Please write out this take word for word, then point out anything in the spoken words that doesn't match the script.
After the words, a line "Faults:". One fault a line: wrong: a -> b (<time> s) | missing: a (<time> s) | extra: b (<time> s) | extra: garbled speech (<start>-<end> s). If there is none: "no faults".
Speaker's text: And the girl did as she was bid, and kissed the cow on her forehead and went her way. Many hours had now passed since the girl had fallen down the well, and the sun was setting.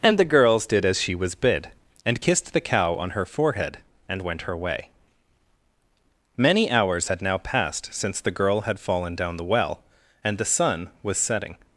And the girls did as she was bid, and kissed the cow on her forehead and went her way. Many hours had now passed since the girl had fallen down the well, and the sun was setting.
Faults:
wrong: girl -> girls (0.2 s)